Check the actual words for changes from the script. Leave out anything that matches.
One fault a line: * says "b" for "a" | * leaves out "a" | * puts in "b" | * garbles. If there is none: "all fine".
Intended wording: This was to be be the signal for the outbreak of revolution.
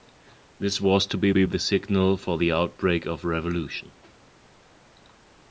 all fine